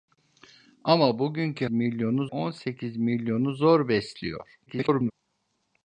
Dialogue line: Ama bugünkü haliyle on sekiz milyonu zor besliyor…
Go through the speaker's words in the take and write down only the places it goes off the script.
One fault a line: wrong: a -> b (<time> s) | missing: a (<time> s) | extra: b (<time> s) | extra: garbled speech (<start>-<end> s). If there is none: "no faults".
wrong: haliyle -> milyonu (1.7 s)
extra: garbled speech (4.7-5.1 s)